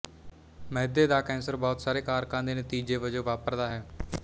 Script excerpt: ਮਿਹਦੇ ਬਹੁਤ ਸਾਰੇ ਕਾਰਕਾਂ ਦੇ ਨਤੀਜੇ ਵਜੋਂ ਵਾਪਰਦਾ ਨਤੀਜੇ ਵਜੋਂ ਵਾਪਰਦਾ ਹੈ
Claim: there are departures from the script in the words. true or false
true